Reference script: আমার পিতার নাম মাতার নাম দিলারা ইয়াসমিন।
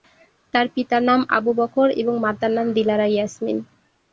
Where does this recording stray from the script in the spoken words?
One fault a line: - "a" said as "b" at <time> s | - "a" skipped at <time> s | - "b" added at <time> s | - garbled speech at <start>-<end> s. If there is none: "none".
- "আমার" said as "তার" at 0.5 s
- "আবু বকর এবং" added at 1.4 s